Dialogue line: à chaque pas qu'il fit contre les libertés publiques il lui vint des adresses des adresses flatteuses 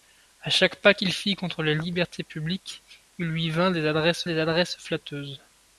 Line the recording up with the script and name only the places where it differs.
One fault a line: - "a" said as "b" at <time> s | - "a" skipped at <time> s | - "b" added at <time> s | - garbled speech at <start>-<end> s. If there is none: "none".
none